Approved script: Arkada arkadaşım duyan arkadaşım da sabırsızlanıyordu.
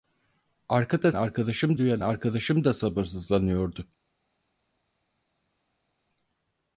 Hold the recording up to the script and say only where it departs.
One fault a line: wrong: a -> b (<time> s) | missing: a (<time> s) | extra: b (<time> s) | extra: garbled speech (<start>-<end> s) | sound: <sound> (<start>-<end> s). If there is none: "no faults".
no faults